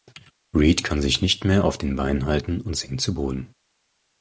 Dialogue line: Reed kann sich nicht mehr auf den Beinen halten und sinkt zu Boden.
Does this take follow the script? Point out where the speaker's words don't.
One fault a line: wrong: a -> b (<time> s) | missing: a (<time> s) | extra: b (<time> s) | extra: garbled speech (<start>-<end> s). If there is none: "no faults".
no faults